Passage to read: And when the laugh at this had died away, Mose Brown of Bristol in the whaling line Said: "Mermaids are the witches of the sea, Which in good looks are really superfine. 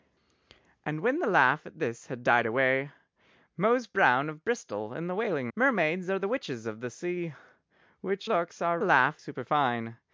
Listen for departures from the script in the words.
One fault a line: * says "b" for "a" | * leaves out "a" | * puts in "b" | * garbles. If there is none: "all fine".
* leaves out "line Said"
* leaves out "in good"
* says "laugh" for "really"